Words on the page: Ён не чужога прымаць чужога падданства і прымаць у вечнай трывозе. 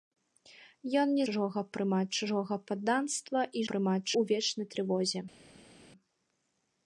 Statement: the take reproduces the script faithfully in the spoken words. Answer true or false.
true